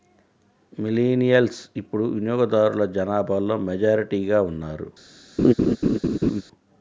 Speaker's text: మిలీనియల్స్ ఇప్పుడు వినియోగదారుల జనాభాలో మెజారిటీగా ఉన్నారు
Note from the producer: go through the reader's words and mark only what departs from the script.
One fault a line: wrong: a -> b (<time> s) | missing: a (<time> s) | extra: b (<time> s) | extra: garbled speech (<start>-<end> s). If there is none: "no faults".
no faults